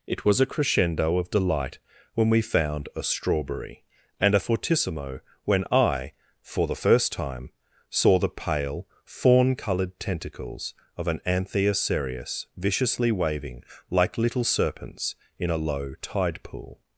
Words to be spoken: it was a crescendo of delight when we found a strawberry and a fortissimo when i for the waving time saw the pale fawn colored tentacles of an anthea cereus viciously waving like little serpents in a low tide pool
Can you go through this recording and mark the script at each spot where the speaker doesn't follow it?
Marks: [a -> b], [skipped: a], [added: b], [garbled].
it was a crescendo of delight when we found a strawberry and a fortissimo when i for the [waving -> first] time saw the pale fawn colored tentacles of an anthea cereus viciously waving like little serpents in a low tide pool